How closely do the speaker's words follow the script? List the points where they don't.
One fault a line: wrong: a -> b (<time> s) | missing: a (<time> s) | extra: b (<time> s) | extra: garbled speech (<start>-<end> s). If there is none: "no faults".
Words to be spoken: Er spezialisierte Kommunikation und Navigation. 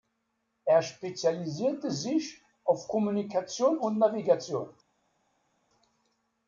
extra: sich auf (1.9 s)